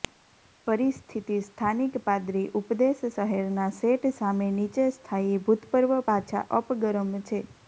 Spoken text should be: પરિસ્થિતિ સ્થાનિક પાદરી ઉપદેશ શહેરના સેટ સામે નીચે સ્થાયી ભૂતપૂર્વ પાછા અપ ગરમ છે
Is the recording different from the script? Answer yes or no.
no